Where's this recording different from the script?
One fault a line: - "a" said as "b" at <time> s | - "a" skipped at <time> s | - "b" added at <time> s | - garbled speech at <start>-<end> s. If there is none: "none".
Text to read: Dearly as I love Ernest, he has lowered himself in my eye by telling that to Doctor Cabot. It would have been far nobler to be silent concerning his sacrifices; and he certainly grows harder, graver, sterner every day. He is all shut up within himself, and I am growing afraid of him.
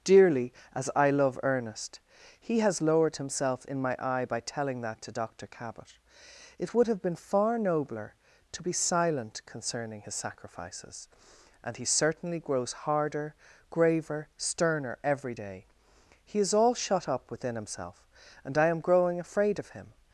none